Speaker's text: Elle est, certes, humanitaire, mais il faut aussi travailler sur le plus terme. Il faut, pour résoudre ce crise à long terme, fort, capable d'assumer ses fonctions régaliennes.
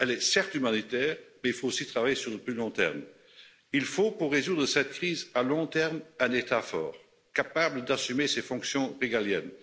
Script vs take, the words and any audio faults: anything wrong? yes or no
yes